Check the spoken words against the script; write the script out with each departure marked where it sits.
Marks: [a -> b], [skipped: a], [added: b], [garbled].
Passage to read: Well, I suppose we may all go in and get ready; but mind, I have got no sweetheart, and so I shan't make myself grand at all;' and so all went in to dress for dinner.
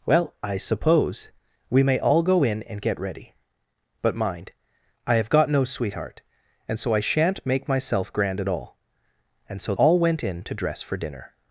Well, I suppose we may all go in and get ready; but mind, I have got no sweetheart, and so I shan't make myself grand at all;' and so all went in to dress for dinner.